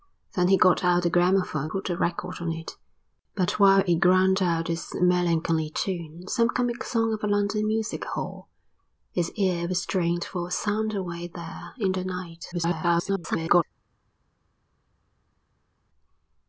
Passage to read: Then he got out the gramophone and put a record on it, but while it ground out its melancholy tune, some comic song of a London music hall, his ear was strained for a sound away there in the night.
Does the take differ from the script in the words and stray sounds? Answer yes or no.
yes